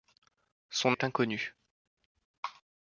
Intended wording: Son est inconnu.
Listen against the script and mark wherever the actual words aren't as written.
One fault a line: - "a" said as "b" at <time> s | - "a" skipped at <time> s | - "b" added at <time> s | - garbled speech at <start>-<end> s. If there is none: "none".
none